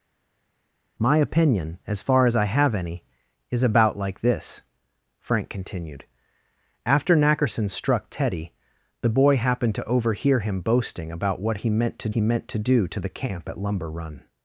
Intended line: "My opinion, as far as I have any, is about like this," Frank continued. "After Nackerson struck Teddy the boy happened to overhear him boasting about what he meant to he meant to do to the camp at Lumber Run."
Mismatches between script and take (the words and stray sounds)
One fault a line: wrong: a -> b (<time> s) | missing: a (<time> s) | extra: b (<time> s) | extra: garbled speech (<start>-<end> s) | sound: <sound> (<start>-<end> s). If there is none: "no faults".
no faults